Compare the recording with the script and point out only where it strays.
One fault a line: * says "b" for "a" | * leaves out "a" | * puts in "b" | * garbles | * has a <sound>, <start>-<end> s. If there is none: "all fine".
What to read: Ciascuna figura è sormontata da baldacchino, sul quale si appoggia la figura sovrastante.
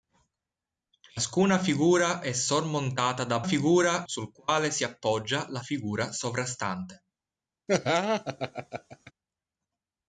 * says "figura" for "baldacchino"
* has a laugh, 7.7-9.1 s